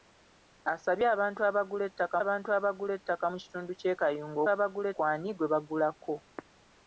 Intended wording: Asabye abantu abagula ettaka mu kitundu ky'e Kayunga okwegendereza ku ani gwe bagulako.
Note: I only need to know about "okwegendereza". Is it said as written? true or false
false